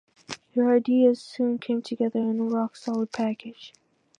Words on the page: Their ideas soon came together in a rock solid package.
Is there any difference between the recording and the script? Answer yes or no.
no